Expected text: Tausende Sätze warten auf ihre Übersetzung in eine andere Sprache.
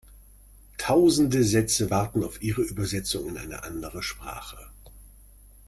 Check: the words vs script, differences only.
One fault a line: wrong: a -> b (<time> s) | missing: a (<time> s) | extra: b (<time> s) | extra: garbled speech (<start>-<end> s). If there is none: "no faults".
no faults